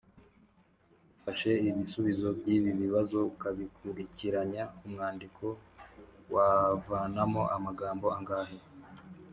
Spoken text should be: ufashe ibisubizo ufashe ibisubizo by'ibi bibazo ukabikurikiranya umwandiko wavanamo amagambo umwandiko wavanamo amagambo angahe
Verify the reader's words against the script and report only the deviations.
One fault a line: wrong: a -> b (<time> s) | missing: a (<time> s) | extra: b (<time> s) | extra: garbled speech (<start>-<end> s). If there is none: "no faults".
missing: ufashe ibisubizo (2.3 s)
missing: umwandiko wavanamo amagambo (8.1 s)